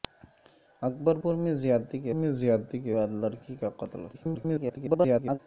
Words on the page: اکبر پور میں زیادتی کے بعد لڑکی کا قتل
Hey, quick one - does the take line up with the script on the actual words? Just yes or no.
no